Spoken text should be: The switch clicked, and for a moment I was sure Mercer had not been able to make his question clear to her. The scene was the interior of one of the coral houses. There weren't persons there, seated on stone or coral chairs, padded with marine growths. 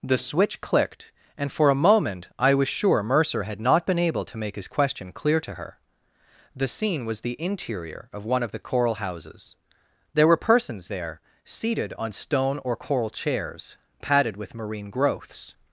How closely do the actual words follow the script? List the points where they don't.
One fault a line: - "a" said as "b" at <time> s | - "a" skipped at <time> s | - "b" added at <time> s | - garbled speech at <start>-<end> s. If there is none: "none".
- "weren't" said as "were" at 10.2 s